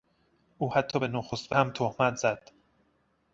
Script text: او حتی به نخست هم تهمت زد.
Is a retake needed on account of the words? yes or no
no